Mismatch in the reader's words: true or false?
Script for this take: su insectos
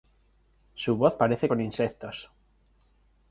true